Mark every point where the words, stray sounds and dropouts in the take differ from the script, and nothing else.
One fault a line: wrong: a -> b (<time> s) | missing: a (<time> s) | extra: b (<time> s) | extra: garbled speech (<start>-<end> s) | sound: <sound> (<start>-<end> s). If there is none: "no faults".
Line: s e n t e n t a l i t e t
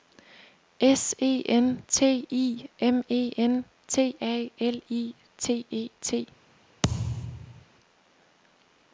extra: i m (2.3 s)
sound: thud (6.8-7.7 s)